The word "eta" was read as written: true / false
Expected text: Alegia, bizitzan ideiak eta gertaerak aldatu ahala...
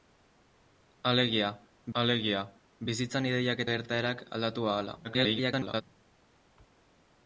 false